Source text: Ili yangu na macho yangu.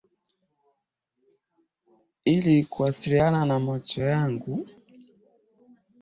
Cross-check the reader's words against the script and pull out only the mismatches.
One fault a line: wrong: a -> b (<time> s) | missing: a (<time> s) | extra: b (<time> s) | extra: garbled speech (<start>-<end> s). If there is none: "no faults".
wrong: yangu -> kuwasiliana (2.6 s)